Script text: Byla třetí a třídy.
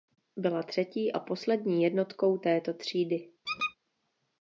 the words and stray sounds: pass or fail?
fail